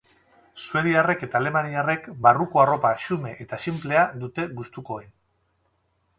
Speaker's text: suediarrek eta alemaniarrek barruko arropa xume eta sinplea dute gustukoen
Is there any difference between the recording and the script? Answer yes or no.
no